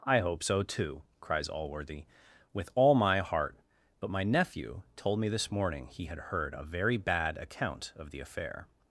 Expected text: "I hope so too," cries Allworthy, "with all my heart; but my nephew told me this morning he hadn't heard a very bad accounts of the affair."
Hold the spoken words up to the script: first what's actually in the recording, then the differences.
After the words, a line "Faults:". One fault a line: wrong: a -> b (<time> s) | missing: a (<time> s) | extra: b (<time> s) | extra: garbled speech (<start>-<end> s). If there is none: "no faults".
"I hope so too," cries Allworthy, "with all my heart; but my nephew told me this morning he had heard a very bad account of the affair."
Faults:
wrong: hadn't -> had (6.0 s)
wrong: accounts -> account (7.4 s)